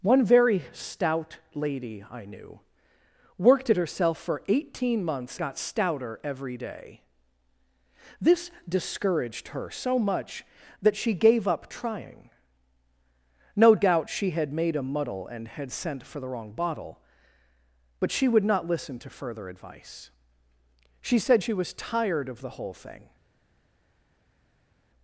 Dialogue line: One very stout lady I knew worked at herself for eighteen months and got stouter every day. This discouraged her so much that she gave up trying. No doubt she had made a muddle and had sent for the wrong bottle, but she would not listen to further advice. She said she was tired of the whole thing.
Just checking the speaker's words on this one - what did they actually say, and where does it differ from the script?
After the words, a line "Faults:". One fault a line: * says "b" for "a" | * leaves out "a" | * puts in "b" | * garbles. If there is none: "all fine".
One very stout lady I knew worked at herself for eighteen months got stouter every day. This discouraged her so much that she gave up trying. No doubt she had made a muddle and had sent for the wrong bottle, but she would not listen to further advice. She said she was tired of the whole thing.
Faults:
* leaves out "and"